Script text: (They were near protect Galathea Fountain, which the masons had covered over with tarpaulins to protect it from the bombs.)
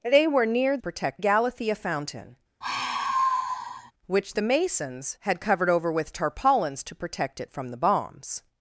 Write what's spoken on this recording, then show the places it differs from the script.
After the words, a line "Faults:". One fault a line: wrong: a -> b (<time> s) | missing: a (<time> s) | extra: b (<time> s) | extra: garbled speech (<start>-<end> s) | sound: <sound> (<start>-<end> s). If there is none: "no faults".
(They were near protect Galathea Fountain, which the masons had covered over with tarpaulins to protect it from the bombs.)
Faults:
sound: sigh (2.6-3.9 s)